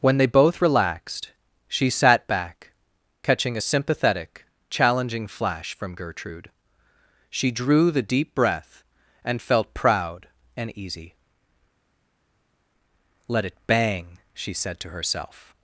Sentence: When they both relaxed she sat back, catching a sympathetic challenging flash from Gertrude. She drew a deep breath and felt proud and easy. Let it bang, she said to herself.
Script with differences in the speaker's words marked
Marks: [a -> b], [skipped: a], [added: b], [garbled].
When they both relaxed she sat back, catching a sympathetic challenging flash from Gertrude. She drew [a -> the] deep breath and felt proud and easy. Let it bang, she said to herself.